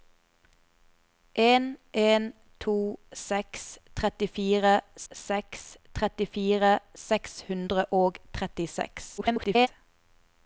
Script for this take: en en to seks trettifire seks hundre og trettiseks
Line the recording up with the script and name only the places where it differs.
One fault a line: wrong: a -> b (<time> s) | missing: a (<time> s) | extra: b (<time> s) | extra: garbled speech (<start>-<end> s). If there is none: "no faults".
extra: trettifire seks (5.9 s)
extra: garbled speech (9.2-9.7 s)